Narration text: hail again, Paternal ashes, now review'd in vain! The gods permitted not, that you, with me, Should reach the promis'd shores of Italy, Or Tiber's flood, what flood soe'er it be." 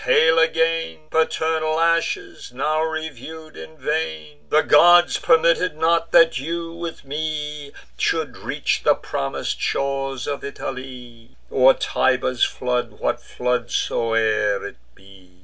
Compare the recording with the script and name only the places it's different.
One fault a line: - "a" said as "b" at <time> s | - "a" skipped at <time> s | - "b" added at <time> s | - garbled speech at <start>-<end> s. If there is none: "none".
none